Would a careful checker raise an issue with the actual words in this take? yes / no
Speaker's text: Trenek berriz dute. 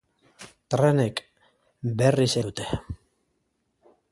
no